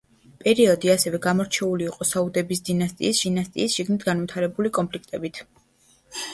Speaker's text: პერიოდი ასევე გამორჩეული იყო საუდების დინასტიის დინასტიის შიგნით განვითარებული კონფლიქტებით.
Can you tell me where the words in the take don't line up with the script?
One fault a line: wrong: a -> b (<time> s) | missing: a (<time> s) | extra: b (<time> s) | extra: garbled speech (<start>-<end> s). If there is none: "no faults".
no faults